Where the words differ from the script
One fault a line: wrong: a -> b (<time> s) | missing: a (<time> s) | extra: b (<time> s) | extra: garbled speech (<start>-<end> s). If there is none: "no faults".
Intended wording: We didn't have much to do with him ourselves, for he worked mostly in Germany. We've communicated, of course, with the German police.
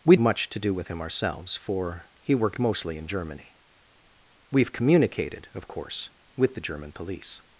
missing: didn't have (0.1 s)